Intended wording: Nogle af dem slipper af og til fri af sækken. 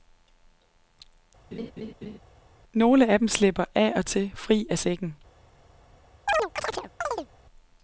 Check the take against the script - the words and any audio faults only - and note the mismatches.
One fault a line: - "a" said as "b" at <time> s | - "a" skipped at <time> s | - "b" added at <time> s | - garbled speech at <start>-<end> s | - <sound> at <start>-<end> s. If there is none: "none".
- laugh at 1.5-2.2 s
- chirp at 6.3-7.3 s